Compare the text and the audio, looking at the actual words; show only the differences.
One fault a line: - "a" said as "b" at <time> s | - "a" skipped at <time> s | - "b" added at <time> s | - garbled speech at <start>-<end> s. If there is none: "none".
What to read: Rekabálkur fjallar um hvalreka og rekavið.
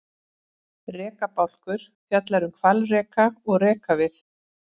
none